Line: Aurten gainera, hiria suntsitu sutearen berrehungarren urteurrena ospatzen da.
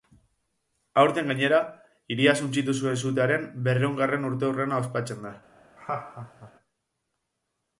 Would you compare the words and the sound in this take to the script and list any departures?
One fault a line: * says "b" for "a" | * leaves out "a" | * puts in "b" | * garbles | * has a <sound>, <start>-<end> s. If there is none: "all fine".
* puts in "zuen"
* has a laugh, 5.8-6.5 s